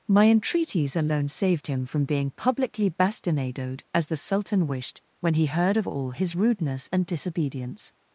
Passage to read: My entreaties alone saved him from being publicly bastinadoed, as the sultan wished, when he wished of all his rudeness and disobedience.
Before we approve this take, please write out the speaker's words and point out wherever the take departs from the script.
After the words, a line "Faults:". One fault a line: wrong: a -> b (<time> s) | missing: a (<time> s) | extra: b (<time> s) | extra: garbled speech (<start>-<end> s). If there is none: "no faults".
My entreaties alone saved him from being publicly bastinadoed, as the sultan wished, when he heard of all his rudeness and disobedience.
Faults:
wrong: wished -> heard (5.5 s)